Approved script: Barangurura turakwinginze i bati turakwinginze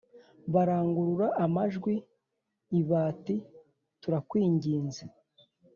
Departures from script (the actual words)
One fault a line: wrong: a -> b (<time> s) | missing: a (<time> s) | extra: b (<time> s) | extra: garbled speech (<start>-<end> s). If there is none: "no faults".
wrong: turakwinginze -> amajwi (1.4 s)